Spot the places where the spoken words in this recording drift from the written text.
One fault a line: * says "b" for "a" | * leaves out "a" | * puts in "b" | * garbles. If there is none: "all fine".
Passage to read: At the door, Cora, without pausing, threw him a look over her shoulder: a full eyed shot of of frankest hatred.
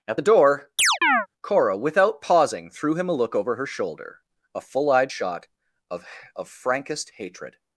all fine